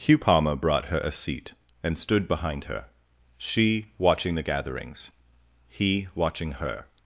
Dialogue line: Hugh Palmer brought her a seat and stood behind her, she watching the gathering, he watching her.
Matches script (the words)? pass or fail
fail